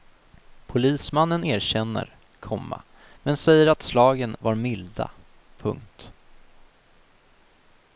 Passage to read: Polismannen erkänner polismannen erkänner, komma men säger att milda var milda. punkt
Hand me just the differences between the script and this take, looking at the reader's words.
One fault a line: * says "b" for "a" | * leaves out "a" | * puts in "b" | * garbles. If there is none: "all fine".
* leaves out "polismannen erkänner"
* says "slagen" for "milda"